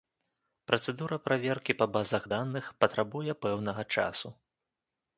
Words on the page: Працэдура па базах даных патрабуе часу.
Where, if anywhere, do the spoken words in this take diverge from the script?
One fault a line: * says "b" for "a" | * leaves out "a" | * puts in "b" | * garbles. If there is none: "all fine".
* puts in "праверкі"
* puts in "пэўнага"